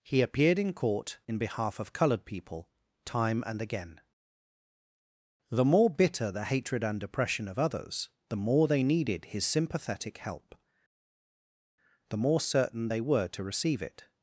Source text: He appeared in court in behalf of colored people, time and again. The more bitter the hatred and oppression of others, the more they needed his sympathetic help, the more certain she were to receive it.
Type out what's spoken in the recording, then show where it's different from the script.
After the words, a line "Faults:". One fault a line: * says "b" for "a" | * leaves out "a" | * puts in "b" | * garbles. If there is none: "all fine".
He appeared in court in behalf of colored people, time and again. The more bitter the hatred and oppression of others, the more they needed his sympathetic help, the more certain they were to receive it.
Faults:
* says "they" for "she"